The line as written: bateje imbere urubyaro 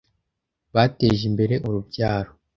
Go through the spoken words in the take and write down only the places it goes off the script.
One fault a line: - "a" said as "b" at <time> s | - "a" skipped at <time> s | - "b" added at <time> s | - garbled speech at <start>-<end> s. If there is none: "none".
none